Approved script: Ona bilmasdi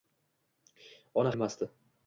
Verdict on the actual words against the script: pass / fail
pass